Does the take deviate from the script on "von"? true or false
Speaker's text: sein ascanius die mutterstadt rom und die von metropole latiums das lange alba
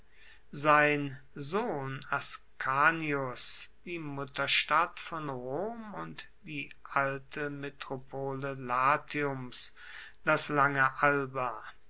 true